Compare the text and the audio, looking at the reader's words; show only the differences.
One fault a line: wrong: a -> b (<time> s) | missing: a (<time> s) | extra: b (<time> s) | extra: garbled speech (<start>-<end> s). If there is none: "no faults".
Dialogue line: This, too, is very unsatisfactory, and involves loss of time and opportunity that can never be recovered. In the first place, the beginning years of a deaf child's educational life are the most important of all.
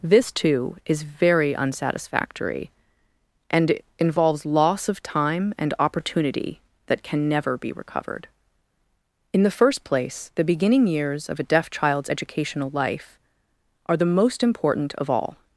no faults